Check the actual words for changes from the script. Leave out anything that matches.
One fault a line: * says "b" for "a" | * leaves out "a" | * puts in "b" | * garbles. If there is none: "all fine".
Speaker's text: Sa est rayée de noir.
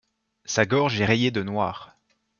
* puts in "gorge"